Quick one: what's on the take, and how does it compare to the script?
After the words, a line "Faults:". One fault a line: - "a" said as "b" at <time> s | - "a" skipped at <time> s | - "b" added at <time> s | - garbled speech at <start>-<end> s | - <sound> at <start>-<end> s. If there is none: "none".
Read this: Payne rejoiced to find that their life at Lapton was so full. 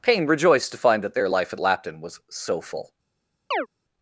Payne rejoiced to find that their life at Lapton was so full.
Faults:
- chirp at 3.5-3.7 s